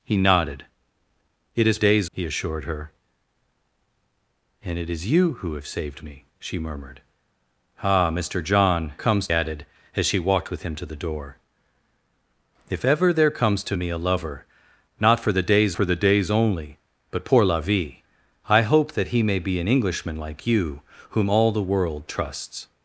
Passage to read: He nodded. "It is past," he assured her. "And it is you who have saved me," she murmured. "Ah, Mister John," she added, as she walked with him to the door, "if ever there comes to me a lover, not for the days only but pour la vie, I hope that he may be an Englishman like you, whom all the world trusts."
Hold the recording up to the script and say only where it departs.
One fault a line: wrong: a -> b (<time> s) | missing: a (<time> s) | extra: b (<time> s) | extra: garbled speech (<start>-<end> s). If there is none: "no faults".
wrong: past -> days (1.8 s)
wrong: she -> comes (9.0 s)
extra: for the days (15.7 s)